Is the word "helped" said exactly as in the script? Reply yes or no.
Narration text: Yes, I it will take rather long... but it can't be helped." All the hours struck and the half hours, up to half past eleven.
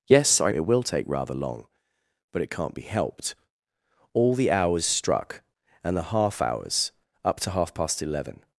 yes